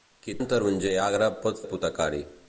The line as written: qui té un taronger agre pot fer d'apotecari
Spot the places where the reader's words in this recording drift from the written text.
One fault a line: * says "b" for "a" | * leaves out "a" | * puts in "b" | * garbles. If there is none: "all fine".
* leaves out "té"
* leaves out "fer"